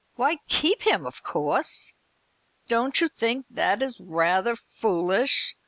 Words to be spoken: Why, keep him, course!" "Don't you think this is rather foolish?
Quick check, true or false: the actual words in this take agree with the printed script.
false